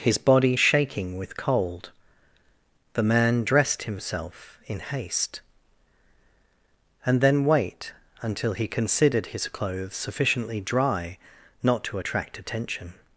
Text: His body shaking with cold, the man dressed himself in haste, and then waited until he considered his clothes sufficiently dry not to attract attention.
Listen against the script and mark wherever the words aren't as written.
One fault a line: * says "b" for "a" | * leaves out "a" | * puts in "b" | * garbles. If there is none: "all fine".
* says "wait" for "waited"